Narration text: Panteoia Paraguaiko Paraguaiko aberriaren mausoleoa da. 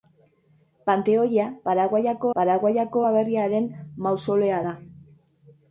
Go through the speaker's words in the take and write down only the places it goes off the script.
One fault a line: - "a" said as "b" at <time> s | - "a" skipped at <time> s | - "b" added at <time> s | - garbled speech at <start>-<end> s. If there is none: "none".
none